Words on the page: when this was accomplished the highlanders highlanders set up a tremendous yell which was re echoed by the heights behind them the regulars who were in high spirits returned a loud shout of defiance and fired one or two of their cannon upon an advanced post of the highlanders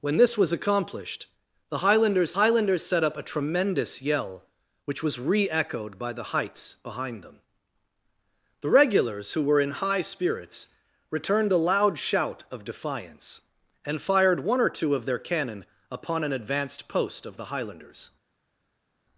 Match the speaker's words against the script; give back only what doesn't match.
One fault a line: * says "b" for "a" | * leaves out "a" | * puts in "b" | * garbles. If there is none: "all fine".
all fine